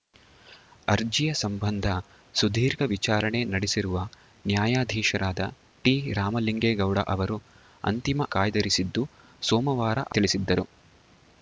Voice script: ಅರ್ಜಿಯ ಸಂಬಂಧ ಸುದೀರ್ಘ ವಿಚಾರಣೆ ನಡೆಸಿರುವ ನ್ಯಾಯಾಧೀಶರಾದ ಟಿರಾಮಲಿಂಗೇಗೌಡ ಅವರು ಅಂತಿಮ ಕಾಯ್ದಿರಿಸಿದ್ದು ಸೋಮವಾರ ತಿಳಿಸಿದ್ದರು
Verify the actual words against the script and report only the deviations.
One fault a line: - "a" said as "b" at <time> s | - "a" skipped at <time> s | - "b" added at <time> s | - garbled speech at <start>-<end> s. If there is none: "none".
none